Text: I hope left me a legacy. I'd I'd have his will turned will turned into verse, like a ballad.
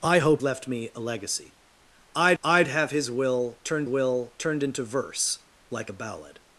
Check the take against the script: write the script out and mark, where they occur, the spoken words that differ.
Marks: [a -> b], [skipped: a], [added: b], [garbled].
I hope left me a legacy. I'd I'd have his will turned will turned into verse, like a ballad.